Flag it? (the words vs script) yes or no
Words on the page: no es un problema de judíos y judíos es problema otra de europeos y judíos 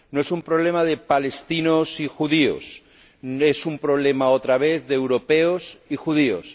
yes